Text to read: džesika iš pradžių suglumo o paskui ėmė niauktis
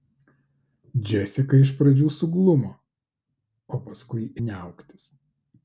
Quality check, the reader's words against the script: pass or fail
fail